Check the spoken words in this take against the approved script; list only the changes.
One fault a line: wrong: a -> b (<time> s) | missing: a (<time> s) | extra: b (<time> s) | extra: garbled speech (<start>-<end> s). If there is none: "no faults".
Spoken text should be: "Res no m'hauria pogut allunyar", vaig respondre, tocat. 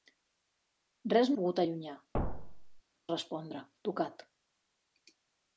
missing: m'hauria (1.4 s)
missing: vaig (1.9 s)